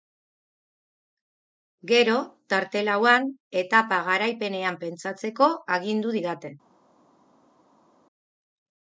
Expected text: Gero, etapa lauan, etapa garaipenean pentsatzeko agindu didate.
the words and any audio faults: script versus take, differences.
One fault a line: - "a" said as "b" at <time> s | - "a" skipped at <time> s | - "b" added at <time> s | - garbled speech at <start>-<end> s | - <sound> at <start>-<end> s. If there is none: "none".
- "etapa" said as "tarte" at 2.5 s